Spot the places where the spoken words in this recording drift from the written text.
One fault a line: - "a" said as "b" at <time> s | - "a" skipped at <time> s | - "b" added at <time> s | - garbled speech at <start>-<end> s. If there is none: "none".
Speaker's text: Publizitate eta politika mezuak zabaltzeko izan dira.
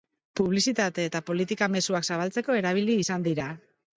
- "erabili" added at 2.6 s